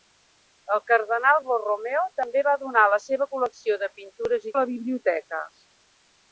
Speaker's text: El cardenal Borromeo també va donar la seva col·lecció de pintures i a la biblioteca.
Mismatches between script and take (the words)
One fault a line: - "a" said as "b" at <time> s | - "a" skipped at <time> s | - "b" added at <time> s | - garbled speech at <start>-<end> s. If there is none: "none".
none